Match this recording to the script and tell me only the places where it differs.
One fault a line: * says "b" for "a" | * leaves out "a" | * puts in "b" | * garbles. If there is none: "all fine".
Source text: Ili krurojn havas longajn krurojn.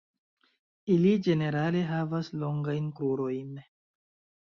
* says "ĝenerale" for "krurojn"